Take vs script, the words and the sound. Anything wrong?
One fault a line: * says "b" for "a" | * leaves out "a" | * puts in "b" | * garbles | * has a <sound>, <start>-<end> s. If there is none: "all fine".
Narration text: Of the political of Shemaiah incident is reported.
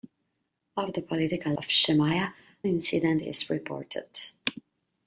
all fine